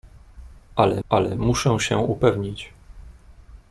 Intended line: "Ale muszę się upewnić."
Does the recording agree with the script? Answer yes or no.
no